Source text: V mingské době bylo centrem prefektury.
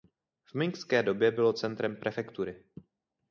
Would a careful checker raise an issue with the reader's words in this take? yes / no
no